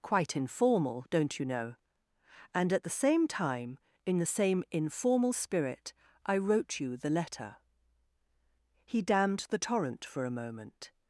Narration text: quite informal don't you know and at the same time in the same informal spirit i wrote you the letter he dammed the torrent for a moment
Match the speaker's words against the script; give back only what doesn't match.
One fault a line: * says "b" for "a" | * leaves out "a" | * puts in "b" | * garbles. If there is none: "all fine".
all fine